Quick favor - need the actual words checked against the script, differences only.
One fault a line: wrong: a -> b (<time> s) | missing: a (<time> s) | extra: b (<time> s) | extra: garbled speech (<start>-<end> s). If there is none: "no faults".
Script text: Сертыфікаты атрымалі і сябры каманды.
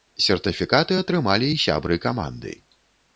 no faults